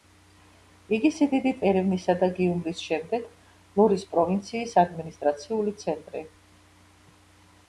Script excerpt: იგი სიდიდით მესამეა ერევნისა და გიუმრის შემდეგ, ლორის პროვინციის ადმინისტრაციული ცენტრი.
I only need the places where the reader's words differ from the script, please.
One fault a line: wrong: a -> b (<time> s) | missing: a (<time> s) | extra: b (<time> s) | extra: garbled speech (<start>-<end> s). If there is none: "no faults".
missing: მესამეა (1.6 s)